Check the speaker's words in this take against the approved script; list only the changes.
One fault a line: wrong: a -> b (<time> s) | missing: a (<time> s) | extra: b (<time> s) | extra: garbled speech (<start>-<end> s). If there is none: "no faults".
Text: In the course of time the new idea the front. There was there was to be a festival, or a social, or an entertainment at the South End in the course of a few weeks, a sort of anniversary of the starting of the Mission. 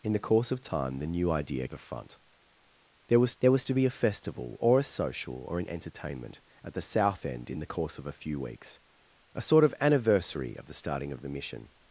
no faults